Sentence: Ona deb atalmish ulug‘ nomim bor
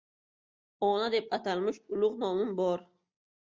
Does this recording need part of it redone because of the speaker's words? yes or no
no